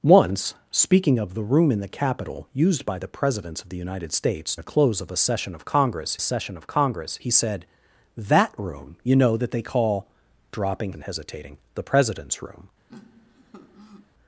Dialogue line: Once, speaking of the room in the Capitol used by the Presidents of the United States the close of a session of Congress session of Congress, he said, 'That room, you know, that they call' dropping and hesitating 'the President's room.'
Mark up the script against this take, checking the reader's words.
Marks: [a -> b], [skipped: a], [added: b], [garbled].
Once, speaking of the room in the Capitol used by the Presidents of the United States the close of a session of Congress session of Congress, he said, 'That room, you know, that they call' dropping and hesitating 'the President's room.'